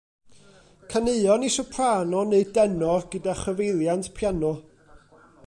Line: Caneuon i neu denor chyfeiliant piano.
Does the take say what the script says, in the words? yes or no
no